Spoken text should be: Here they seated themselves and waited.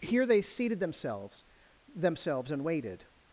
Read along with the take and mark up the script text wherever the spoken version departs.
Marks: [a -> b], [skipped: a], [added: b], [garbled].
Here they seated themselves [added: themselves] and waited.